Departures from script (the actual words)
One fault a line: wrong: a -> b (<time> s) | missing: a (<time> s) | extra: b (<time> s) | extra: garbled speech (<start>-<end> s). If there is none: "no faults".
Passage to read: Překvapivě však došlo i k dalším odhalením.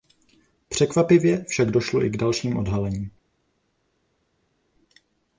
no faults